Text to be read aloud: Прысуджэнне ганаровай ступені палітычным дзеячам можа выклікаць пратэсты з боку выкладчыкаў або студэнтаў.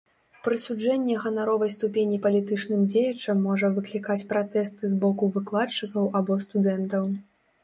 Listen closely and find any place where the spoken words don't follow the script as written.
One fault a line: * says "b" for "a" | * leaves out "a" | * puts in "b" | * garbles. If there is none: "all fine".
all fine